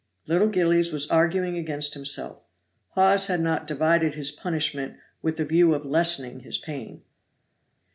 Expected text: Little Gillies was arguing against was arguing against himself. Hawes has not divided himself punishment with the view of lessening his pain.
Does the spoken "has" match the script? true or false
false